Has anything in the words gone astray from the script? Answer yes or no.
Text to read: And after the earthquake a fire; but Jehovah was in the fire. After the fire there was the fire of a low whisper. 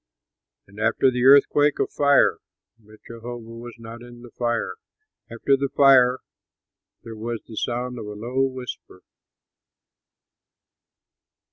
yes